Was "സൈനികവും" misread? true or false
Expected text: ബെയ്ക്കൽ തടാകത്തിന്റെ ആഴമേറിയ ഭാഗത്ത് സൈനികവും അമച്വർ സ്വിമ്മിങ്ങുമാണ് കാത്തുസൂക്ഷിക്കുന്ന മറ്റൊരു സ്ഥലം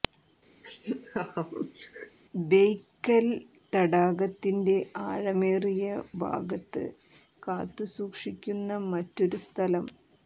true